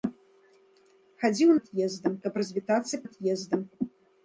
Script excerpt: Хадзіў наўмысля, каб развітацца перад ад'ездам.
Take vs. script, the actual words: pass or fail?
fail